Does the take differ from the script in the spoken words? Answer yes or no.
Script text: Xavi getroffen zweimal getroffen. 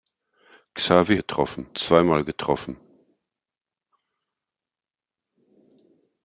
no